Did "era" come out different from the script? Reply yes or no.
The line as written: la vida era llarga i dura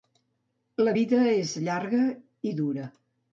yes